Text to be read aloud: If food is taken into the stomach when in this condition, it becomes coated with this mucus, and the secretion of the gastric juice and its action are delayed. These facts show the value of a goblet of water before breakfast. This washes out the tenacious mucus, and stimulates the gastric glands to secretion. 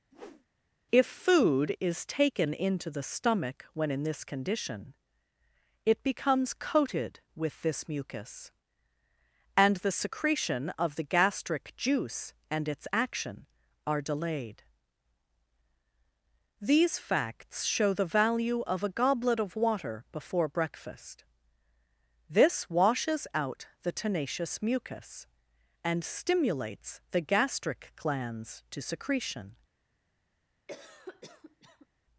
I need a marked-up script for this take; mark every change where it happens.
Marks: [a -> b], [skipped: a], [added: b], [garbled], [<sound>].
[whoosh] If food is taken into the stomach when in this condition, it becomes coated with this mucus, and the secretion of the gastric juice and its action are delayed. These facts show the value of a goblet of water before breakfast. This washes out the tenacious mucus, and stimulates the gastric glands to secretion. [cough]